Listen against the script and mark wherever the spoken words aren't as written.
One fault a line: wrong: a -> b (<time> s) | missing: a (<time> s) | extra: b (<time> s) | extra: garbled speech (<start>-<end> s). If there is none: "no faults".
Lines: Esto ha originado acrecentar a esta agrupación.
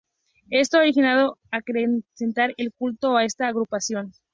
extra: el culto (2.6 s)